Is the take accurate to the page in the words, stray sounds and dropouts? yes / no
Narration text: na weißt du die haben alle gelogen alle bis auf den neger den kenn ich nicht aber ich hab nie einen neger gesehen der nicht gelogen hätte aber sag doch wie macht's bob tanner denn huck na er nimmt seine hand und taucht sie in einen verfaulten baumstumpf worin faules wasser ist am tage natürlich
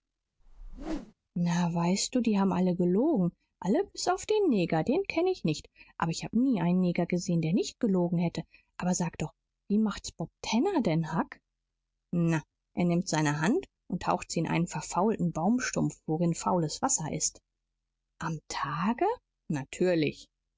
no